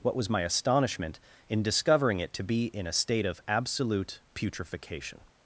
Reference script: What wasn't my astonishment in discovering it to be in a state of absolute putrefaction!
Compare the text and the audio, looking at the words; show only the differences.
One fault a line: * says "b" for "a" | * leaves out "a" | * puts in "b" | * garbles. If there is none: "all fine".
* says "was" for "wasn't"